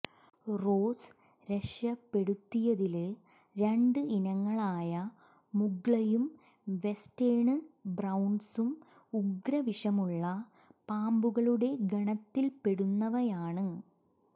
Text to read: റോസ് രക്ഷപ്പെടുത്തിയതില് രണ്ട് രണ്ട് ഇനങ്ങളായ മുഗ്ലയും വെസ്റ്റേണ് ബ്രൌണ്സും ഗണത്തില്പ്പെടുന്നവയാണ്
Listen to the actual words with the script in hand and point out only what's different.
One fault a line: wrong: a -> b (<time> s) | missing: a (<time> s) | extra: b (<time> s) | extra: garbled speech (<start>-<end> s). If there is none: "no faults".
missing: രണ്ട് (4.0 s)
extra: ഉഗ്രവിഷമുള്ള പാമ്പുകളുടെ (9.1 s)